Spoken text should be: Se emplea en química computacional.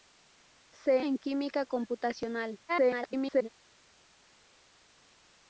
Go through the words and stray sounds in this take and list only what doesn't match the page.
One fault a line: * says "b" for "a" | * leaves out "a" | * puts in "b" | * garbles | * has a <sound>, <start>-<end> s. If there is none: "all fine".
* leaves out "emplea"
* garbles